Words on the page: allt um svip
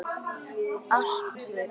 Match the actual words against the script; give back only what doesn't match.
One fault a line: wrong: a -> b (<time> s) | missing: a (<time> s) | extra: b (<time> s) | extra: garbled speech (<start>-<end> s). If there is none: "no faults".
no faults